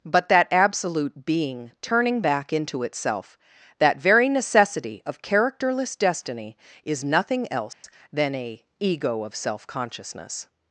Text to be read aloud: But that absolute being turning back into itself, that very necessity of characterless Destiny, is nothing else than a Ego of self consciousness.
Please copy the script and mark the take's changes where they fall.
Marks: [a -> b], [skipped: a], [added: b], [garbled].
But that absolute being turning back into itself, that very necessity of characterless Destiny, is nothing else than a Ego of self consciousness.